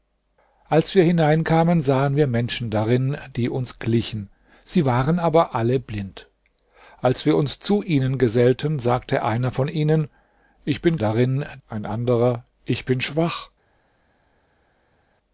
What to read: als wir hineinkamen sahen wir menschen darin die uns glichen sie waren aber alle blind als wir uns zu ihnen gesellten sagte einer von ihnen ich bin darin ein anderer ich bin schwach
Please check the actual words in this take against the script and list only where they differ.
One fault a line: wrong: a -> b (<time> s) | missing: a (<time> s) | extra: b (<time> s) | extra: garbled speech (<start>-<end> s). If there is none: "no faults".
no faults